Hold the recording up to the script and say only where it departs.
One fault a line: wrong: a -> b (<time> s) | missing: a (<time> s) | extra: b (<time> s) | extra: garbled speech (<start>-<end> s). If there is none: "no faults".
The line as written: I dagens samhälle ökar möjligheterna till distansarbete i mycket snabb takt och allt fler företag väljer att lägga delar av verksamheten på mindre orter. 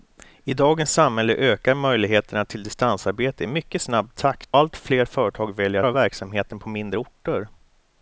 missing: och (4.6 s)
missing: att lägga delar (5.8 s)